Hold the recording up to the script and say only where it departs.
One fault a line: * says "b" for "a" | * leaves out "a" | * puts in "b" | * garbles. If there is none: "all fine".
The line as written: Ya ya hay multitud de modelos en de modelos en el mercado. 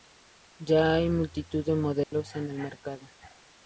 * leaves out "ya"
* leaves out "de modelos en"